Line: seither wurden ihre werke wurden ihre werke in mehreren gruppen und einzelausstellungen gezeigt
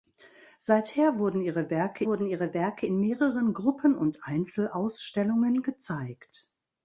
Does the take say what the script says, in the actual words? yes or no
yes